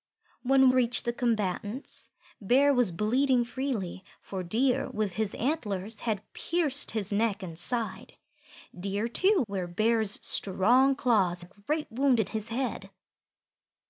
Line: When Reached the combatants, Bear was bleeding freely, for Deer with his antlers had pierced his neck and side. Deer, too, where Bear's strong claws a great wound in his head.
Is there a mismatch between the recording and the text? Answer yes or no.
no